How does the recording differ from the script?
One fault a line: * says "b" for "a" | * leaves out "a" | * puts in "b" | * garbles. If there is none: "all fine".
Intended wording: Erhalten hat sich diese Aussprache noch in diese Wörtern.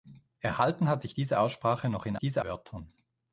all fine